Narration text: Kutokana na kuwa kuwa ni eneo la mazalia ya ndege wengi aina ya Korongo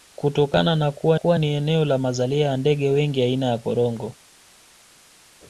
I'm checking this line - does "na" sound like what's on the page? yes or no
yes